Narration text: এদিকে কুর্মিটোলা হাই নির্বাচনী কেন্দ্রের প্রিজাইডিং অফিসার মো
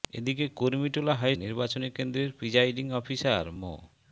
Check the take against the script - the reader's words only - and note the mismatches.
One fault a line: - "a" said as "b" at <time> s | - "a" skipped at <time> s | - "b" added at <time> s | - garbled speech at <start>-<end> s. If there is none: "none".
none